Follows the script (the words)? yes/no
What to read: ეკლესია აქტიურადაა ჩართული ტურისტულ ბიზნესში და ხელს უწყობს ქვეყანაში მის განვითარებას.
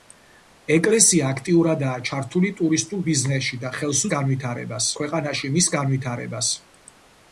no